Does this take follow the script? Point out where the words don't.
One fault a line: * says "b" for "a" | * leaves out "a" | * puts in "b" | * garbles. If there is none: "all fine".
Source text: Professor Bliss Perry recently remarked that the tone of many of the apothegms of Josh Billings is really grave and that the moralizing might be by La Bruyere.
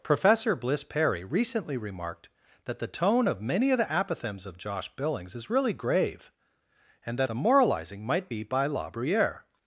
all fine